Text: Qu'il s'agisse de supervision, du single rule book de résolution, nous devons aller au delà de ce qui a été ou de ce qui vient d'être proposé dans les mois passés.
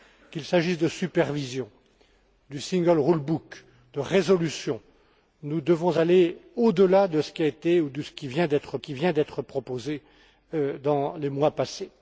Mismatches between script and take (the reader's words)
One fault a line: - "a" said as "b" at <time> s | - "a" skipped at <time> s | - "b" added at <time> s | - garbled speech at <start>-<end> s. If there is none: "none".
- "qui vient d'être" added at 8.8 s